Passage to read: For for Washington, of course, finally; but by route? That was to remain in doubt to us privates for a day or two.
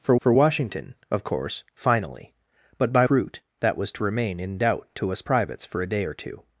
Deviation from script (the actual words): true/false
false